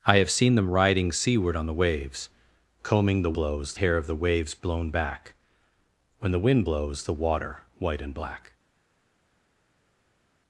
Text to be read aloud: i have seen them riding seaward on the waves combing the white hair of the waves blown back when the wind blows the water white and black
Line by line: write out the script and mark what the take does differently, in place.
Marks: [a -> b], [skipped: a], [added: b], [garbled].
i have seen them riding seaward on the waves combing the [white -> blows] hair of the waves blown back when the wind blows the water white and black